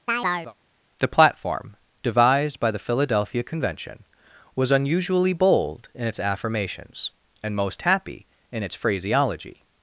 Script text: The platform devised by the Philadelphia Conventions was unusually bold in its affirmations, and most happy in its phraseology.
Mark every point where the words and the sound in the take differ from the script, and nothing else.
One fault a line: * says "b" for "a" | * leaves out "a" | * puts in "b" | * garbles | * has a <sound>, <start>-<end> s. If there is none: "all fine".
* has a chirp, 0.1-0.5 s
* says "Convention" for "Conventions"